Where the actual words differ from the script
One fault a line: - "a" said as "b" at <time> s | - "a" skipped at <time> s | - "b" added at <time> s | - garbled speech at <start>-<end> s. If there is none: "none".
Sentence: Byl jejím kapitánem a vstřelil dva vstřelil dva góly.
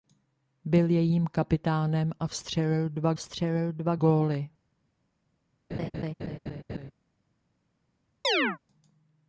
none